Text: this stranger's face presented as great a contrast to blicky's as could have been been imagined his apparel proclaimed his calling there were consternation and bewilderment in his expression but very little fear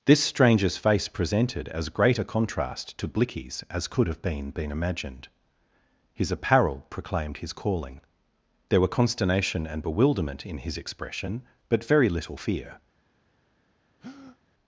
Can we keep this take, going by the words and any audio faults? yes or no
no